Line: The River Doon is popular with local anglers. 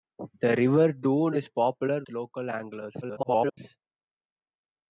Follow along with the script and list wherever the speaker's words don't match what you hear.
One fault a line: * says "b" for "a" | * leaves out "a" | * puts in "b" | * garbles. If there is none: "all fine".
* leaves out "with"
* garbles